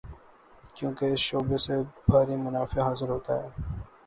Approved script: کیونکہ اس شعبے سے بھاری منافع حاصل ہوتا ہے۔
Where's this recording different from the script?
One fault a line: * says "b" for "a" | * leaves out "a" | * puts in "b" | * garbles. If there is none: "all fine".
all fine